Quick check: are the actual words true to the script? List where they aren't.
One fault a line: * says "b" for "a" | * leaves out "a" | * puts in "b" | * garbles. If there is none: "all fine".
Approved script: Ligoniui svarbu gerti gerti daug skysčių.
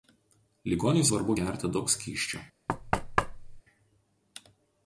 * leaves out "gerti"